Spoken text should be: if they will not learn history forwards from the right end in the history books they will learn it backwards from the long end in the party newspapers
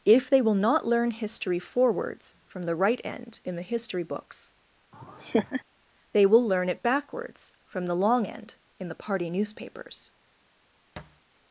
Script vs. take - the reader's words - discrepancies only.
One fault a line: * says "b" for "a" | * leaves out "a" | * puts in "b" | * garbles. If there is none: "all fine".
all fine